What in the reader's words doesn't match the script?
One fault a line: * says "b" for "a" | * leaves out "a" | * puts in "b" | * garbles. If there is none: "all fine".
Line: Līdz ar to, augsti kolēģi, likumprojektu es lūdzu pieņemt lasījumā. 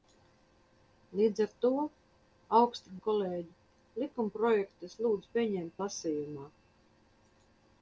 all fine